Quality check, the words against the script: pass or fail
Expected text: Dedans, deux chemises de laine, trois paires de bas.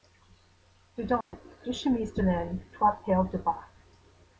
pass